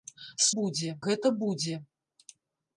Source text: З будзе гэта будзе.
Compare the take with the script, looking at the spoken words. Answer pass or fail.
pass